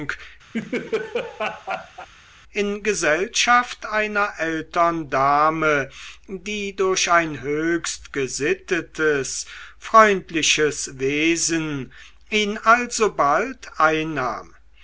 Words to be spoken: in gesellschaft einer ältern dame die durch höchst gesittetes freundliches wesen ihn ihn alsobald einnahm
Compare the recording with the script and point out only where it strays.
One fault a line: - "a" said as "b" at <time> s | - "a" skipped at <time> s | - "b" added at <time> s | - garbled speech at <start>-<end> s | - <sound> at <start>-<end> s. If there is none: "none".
- laugh at 0.5-2.1 s
- "ein" added at 7.1 s
- "ihn" skipped at 12.6 s